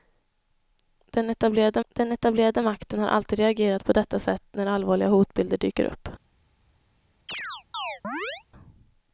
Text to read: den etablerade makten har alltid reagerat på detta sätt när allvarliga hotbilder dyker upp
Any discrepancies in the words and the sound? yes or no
yes